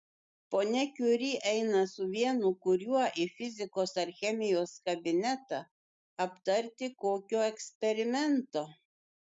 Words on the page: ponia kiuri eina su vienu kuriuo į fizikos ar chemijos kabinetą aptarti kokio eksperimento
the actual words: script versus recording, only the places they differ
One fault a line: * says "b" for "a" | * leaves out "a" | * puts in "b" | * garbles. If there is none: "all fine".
all fine